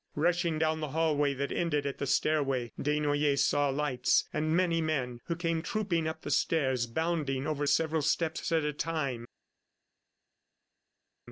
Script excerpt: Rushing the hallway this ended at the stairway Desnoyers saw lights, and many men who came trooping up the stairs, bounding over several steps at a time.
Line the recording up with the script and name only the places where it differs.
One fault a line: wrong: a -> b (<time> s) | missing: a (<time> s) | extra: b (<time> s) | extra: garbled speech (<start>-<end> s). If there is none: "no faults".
extra: down (0.6 s)
wrong: this -> that (1.4 s)